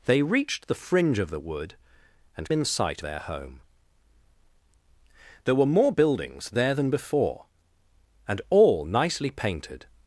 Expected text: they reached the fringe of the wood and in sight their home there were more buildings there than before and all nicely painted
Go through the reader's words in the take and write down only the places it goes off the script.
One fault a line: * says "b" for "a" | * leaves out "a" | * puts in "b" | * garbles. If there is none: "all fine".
all fine